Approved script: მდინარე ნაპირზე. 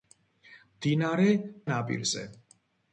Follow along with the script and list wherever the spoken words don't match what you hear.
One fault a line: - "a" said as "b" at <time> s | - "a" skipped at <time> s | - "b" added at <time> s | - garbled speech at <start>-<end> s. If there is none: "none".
none